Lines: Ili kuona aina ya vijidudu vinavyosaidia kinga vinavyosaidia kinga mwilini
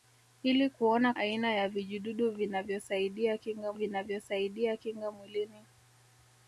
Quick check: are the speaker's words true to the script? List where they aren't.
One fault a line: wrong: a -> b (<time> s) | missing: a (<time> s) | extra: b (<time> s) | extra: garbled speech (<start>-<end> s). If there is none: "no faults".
no faults